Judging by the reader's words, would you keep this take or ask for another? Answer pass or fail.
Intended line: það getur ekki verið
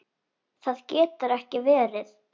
pass